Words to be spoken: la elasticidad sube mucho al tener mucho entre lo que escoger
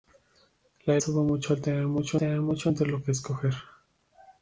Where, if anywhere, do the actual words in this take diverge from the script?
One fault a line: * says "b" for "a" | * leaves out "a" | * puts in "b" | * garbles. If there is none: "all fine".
* leaves out "elasticidad"
* puts in "tener mucho"